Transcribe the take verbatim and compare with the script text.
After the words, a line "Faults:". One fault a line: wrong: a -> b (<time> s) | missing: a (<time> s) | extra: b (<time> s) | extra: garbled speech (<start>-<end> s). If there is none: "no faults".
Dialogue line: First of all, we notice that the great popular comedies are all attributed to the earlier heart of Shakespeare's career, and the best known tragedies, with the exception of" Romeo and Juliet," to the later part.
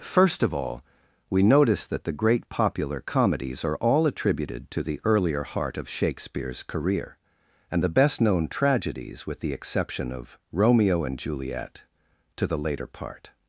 First of all, we notice that the great popular comedies are all attributed to the earlier heart of Shakespeare's career, and the best known tragedies, with the exception of" Romeo and Juliet," to the later part.
Faults:
no faults